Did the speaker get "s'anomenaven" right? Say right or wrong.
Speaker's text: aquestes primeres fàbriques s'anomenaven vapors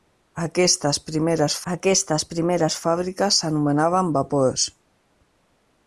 right